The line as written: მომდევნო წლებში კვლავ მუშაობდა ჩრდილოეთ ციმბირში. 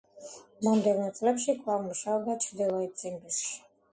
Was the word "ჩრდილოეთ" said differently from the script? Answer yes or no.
no